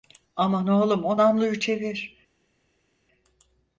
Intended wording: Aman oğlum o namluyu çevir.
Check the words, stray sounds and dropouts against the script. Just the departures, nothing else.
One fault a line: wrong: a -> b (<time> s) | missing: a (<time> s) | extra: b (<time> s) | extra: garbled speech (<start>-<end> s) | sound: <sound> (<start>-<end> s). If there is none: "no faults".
no faults